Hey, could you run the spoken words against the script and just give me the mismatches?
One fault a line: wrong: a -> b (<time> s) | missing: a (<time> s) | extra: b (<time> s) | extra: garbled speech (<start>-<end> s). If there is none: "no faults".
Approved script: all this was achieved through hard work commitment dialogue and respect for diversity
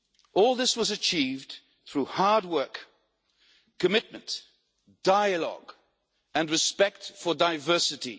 no faults